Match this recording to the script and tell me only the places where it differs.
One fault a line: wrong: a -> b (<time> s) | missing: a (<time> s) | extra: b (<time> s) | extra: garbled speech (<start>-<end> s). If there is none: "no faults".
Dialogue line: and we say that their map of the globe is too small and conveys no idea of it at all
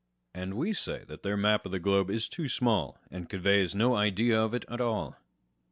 no faults